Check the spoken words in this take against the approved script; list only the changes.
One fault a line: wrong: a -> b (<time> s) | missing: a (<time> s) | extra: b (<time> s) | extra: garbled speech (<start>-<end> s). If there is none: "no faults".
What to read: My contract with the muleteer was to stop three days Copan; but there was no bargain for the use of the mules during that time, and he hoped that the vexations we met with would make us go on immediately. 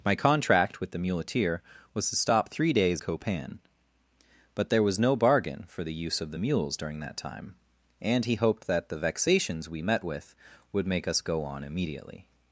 no faults